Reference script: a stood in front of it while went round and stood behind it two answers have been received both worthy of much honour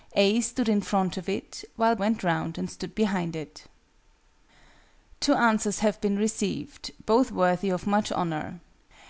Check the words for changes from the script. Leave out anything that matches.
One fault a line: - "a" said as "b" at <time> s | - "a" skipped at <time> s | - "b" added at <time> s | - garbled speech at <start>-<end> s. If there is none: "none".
none